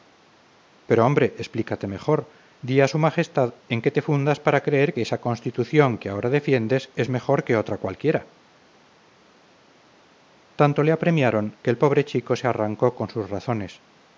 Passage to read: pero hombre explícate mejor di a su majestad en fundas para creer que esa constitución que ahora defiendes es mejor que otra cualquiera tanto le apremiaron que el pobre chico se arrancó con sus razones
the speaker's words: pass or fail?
fail